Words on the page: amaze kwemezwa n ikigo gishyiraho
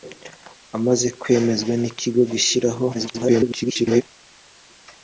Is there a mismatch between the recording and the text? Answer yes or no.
yes